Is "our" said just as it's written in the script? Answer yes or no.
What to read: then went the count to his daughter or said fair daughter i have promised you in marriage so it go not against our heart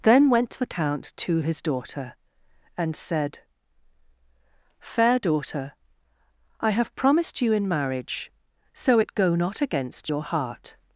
no